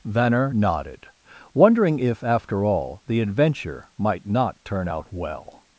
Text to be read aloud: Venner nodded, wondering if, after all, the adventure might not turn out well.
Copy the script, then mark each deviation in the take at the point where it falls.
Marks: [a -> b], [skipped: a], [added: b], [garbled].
Venner nodded, wondering if, after all, the adventure might not turn out well.